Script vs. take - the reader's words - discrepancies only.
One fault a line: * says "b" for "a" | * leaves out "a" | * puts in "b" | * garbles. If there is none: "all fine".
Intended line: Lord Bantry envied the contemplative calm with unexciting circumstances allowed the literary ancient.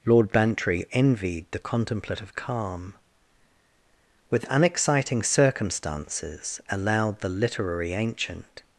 all fine